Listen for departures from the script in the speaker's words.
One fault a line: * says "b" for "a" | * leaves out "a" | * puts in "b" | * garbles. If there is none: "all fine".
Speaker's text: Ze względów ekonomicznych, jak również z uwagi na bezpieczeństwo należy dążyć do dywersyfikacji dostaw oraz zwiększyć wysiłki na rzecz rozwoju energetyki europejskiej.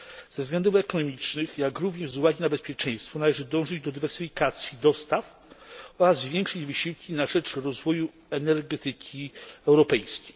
all fine